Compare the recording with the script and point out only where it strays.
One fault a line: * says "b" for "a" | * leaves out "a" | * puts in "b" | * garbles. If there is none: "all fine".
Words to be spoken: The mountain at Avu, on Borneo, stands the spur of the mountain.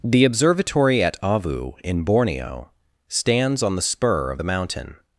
* says "observatory" for "mountain"
* says "in" for "on"
* puts in "on"